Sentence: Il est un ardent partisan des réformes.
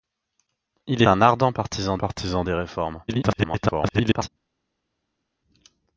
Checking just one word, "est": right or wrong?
wrong